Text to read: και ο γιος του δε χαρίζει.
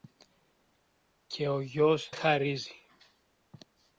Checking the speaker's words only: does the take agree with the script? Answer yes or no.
no